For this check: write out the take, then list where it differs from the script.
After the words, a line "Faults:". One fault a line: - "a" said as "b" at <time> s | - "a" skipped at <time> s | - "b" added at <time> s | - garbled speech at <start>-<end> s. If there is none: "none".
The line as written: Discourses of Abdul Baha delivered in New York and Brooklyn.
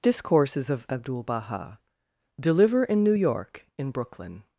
Discourses of Abdul Baha deliver in New York in Brooklyn.
Faults:
- "delivered" said as "deliver" at 2.4 s
- "and" said as "in" at 3.8 s